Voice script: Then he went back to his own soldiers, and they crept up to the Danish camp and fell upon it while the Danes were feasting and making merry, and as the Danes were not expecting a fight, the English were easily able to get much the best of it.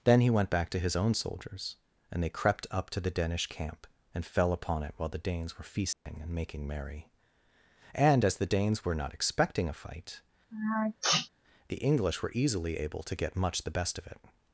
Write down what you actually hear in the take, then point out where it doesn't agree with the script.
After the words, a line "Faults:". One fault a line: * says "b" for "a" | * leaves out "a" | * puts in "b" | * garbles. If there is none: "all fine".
Then he went back to his own soldiers, and they crept up to the Danish camp and fell upon it while the Danes were feasting and making merry, and as the Danes were not expecting a fight, the English were easily able to get much the best of it.
Faults:
all fine